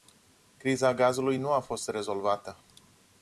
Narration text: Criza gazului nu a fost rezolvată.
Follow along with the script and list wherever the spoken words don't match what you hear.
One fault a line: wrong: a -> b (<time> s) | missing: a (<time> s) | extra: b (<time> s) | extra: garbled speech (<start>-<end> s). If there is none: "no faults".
no faults